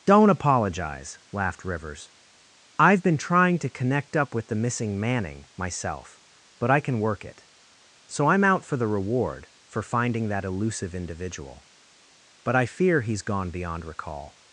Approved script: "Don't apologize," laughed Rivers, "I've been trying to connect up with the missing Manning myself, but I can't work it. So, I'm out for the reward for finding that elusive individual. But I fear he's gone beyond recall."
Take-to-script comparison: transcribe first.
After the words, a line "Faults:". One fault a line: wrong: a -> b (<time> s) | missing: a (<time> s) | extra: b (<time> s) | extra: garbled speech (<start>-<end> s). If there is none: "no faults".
"Don't apologize," laughed Rivers, "I've been trying to connect up with the missing Manning myself, but I can work it. So, I'm out for the reward for finding that elusive individual. But I fear he's gone beyond recall."
Faults:
wrong: can't -> can (6.8 s)